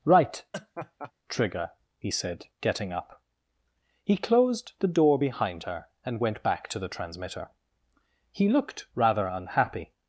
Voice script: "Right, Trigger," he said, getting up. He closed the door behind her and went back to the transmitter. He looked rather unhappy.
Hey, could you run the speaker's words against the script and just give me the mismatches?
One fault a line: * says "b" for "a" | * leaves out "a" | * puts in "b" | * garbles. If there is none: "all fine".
all fine